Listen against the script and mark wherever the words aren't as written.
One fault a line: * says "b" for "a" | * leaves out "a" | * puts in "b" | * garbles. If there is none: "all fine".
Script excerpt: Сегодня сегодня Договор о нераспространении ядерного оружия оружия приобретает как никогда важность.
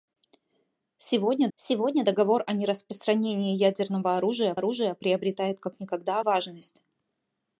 all fine